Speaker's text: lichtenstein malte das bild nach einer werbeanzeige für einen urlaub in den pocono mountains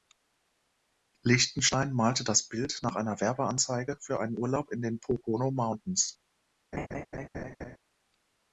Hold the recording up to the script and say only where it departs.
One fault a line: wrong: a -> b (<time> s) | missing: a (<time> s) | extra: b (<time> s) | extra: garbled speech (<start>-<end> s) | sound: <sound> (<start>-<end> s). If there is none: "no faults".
sound: laugh (6.7-7.8 s)